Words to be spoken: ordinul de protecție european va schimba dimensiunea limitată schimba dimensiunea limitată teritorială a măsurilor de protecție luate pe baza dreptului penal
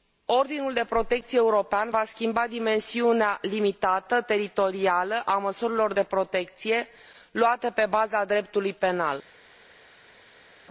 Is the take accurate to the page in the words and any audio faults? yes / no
no